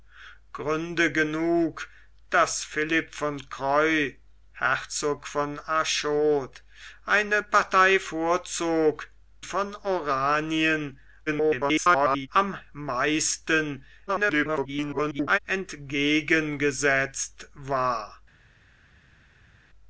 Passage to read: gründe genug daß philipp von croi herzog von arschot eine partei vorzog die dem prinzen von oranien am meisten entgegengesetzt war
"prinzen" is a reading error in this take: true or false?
true